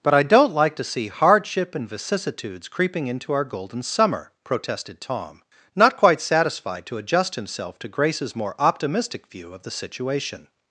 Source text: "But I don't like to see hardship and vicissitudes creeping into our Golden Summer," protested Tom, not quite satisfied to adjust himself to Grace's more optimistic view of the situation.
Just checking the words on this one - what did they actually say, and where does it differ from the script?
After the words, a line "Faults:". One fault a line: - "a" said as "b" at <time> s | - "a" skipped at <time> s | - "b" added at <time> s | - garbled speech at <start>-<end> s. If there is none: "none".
"But I don't like to see hardship and vicissitudes creeping into our Golden Summer," protested Tom, not quite satisfied to adjust himself to Grace's more optimistic view of the situation.
Faults:
none